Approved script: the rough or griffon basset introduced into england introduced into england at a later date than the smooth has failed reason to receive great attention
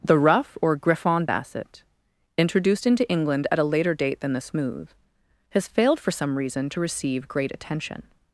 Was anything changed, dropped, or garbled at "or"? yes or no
no